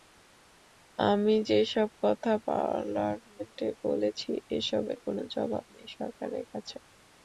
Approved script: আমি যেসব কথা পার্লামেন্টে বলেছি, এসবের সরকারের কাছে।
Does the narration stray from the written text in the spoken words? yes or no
yes